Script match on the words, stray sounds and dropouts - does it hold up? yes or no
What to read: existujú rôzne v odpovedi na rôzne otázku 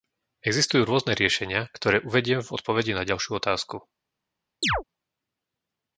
no